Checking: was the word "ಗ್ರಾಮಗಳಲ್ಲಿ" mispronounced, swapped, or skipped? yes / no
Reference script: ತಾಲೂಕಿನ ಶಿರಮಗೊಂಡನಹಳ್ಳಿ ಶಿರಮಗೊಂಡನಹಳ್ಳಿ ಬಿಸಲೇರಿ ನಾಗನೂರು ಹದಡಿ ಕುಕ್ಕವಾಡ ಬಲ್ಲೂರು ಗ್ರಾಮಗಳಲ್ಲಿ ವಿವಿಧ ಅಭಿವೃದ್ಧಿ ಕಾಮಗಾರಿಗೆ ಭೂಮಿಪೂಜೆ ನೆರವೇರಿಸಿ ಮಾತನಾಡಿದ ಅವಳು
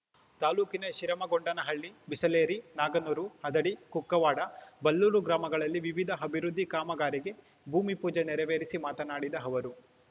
no